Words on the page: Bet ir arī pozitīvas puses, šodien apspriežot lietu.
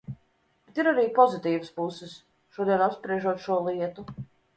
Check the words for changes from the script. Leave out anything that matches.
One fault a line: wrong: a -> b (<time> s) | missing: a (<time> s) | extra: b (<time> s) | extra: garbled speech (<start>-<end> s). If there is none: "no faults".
extra: šo (3.5 s)